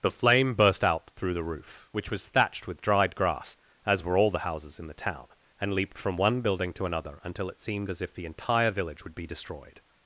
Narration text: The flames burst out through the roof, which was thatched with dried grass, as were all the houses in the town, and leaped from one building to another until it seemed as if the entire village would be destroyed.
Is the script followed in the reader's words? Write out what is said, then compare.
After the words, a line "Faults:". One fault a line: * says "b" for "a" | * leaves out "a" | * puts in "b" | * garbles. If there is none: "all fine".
The flame burst out through the roof, which was thatched with dried grass, as were all the houses in the town, and leaped from one building to another until it seemed as if the entire village would be destroyed.
Faults:
* says "flame" for "flames"